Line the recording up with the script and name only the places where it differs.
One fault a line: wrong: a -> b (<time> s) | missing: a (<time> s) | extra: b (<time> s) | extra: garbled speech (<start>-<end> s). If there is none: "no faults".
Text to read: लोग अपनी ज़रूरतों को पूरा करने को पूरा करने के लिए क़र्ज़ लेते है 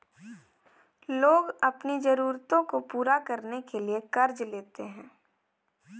missing: को पूरा करने (3.6 s)